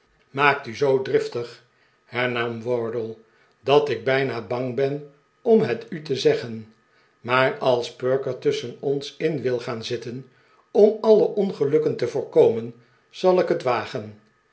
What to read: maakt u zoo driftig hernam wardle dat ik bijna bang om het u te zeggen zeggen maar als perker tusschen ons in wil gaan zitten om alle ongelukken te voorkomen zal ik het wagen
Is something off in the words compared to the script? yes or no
yes